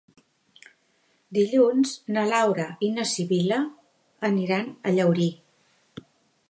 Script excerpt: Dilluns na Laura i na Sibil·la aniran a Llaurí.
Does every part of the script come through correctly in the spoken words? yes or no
yes